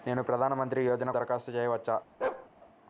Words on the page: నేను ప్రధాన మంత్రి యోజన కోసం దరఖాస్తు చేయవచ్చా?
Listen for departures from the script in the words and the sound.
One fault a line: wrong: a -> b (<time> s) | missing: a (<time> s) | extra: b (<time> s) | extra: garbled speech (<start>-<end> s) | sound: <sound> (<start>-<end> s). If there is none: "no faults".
missing: కోసం (1.1 s)
sound: bark (2.2-2.5 s)